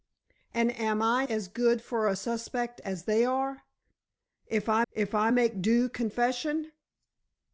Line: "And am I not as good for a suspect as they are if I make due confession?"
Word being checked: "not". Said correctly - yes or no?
no